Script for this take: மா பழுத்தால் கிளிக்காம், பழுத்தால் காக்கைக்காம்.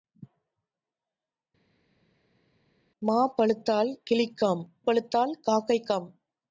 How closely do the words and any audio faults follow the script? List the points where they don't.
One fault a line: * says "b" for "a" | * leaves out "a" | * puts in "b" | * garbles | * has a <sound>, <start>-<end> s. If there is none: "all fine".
all fine